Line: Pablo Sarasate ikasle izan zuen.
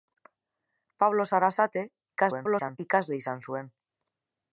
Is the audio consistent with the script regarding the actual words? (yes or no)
no